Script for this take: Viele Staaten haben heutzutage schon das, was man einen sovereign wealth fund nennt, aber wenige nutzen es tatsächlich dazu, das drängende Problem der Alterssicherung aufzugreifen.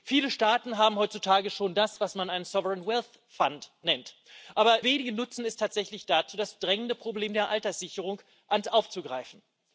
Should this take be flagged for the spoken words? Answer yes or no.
no